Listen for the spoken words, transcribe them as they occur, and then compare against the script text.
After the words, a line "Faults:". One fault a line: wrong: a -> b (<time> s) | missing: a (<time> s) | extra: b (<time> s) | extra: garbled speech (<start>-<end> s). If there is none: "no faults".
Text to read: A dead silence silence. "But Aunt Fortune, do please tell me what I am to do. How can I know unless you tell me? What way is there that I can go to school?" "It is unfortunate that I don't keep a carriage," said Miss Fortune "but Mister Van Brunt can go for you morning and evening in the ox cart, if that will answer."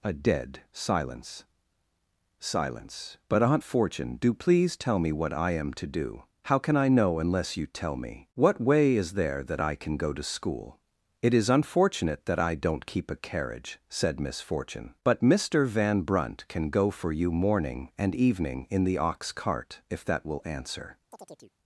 A dead silence silence. "But Aunt Fortune, do please tell me what I am to do. How can I know unless you tell me? What way is there that I can go to school?" "It is unfortunate that I don't keep a carriage," said Miss Fortune "but Mister Van Brunt can go for you morning and evening in the ox cart, if that will answer."
Faults:
no faults